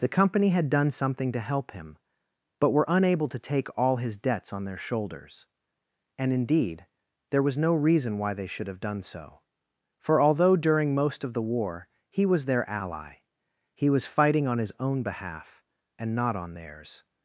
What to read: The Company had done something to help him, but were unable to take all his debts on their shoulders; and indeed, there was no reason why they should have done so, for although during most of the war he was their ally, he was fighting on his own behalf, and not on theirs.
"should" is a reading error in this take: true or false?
false